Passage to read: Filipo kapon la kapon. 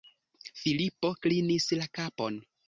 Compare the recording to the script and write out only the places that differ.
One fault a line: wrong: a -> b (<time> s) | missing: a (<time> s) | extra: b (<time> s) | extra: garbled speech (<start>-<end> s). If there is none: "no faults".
wrong: kapon -> klinis (1.3 s)